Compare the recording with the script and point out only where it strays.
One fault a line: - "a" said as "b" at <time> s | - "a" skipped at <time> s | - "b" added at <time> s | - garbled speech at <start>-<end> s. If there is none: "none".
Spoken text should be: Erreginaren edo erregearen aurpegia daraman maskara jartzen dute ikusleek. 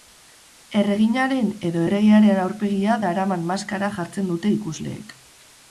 none